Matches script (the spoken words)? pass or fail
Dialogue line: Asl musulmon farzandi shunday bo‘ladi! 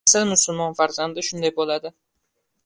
pass